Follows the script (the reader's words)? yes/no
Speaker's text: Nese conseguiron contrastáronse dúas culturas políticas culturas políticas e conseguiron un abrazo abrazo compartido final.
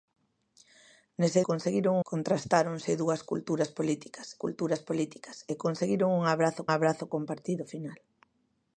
yes